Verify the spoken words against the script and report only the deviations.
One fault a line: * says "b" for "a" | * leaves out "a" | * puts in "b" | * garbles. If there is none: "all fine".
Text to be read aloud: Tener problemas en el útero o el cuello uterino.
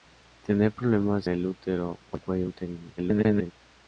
* leaves out "en"
* garbles